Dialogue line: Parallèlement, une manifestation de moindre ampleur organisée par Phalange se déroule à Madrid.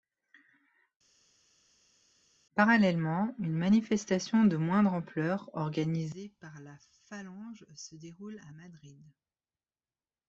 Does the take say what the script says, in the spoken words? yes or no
no